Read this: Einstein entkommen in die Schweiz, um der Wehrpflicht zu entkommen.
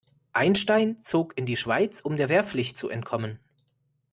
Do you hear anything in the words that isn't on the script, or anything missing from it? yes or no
yes